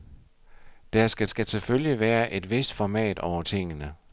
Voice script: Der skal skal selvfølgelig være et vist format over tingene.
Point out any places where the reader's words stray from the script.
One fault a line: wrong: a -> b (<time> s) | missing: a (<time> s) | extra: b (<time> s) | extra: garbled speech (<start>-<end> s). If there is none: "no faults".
no faults